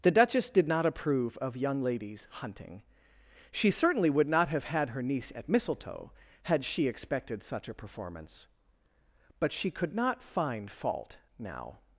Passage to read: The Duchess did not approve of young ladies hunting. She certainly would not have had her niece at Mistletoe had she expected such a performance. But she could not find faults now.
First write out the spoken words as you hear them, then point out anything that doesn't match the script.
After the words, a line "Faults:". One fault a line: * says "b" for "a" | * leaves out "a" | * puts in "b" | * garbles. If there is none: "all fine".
The Duchess did not approve of young ladies hunting. She certainly would not have had her niece at Mistletoe had she expected such a performance. But she could not find fault now.
Faults:
* says "fault" for "faults"